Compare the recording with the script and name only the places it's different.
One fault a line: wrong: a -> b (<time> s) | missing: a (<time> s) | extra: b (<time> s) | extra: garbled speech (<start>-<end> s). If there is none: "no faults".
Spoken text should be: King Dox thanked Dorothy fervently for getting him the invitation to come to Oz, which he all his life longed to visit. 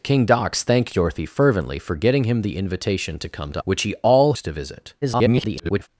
missing: Oz (3.6 s)
missing: his life longed (4.3 s)
extra: garbled speech (5.0-5.9 s)